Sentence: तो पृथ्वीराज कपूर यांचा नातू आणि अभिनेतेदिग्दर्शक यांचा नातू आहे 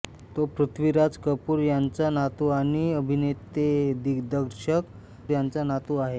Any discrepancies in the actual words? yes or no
no